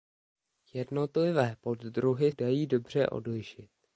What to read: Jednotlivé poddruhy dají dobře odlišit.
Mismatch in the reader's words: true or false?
false